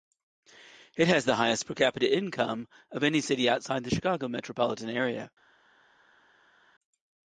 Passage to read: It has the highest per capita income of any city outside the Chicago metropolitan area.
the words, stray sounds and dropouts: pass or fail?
pass